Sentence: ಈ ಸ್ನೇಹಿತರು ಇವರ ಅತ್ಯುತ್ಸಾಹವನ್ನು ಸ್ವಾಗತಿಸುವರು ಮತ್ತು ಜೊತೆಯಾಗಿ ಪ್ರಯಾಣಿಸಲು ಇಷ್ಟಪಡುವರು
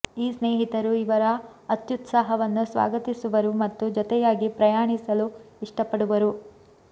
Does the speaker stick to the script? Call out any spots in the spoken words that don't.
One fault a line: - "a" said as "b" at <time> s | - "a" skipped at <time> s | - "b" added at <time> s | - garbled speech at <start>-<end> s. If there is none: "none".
none